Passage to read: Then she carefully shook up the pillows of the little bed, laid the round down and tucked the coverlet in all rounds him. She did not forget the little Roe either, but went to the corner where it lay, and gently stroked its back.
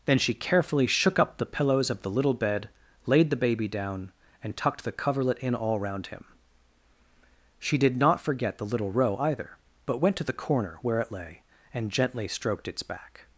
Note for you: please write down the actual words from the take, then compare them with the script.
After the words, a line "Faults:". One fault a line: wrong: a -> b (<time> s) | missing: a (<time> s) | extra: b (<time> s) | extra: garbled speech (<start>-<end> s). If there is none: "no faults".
Then she carefully shook up the pillows of the little bed, laid the baby down and tucked the coverlet in all round him. She did not forget the little Roe either, but went to the corner where it lay, and gently stroked its back.
Faults:
wrong: round -> baby (3.4 s)
wrong: rounds -> round (5.8 s)